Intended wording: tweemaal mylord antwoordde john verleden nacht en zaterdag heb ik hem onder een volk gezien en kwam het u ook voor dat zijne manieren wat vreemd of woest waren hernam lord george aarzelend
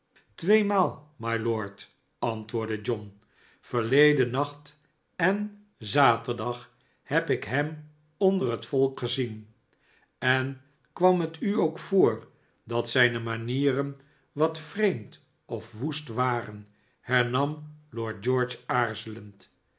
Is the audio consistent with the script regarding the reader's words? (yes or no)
no